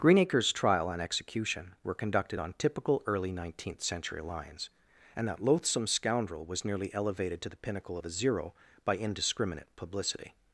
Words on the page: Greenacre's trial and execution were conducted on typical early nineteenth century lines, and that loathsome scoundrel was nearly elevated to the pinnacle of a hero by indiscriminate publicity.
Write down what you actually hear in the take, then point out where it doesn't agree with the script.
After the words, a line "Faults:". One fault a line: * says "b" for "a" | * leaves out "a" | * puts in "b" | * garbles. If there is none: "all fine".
Greenacre's trial and execution were conducted on typical early nineteenth century lines, and that loathsome scoundrel was nearly elevated to the pinnacle of a zero by indiscriminate publicity.
Faults:
* says "zero" for "hero"